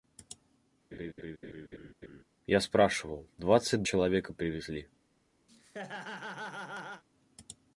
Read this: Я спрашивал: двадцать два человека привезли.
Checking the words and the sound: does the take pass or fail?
fail